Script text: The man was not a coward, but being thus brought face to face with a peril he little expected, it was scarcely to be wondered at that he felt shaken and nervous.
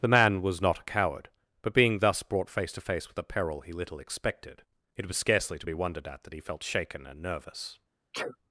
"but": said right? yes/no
yes